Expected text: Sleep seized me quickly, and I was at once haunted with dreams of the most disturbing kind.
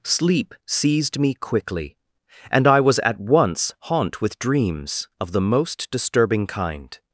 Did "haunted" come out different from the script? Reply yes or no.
yes